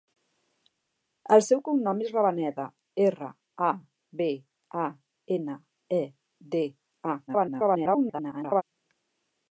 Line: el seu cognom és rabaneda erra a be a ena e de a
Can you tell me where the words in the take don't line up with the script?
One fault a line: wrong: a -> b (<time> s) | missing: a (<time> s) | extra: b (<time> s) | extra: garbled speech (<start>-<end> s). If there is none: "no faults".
extra: garbled speech (7.3-8.6 s)